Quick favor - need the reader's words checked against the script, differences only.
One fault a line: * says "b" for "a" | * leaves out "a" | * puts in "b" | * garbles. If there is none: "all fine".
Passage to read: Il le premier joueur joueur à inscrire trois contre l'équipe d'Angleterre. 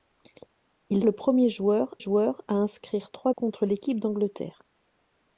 all fine